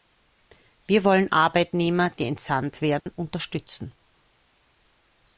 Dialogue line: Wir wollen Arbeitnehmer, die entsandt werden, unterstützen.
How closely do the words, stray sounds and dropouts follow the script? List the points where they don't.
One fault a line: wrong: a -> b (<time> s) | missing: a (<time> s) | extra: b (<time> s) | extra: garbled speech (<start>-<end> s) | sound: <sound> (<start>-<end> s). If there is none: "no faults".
sound: dropout (3.0-3.1 s)